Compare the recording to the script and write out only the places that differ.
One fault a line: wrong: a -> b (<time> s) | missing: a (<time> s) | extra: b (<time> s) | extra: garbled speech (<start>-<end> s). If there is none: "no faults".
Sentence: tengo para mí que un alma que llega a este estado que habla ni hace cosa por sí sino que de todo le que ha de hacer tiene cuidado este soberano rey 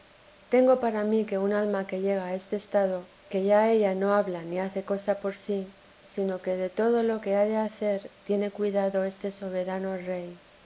extra: ya ella no (3.4 s)
wrong: le -> lo (7.0 s)